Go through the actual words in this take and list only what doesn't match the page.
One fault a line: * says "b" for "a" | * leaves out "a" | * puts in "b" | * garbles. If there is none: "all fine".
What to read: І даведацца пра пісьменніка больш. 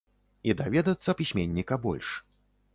* leaves out "пра"